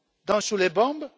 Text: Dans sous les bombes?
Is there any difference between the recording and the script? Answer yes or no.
no